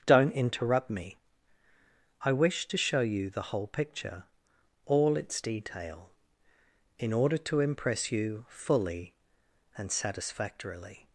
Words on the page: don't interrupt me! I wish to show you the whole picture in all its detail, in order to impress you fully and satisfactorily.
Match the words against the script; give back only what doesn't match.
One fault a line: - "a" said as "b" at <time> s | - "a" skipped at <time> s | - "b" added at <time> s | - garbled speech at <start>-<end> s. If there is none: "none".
- "in" skipped at 4.2 s